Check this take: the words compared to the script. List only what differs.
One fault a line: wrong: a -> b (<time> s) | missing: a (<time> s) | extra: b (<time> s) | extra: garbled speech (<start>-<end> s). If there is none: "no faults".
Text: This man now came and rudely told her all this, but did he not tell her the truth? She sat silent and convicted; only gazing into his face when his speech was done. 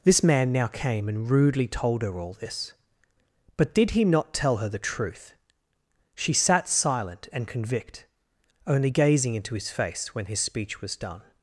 wrong: convicted -> convict (7.5 s)